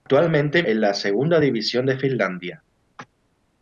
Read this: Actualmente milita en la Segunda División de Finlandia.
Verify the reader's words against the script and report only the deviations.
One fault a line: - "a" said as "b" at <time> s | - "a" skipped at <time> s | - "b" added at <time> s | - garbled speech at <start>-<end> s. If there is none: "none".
- "milita" skipped at 0.6 s